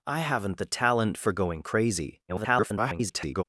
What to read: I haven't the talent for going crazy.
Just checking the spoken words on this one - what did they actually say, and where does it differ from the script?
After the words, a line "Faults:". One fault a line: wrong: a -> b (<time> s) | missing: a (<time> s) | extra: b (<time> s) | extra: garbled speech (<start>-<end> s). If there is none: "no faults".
I haven't the talent for going crazy. [garbled]
Faults:
extra: garbled speech (2.3-3.4 s)